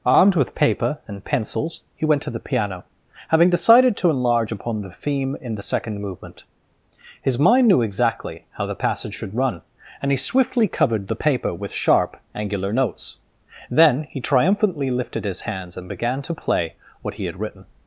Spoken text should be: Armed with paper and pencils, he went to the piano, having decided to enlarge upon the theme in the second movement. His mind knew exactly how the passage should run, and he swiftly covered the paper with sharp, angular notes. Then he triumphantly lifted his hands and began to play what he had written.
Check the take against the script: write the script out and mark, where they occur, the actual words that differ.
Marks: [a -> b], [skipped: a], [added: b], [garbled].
Armed with paper and pencils, he went to the piano, having decided to enlarge upon the theme in the second movement. His mind knew exactly how the passage should run, and he swiftly covered the paper with sharp, angular notes. Then he triumphantly lifted his hands and began to play what he had written.